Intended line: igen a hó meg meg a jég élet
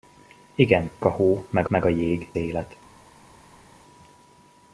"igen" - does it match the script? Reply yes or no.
yes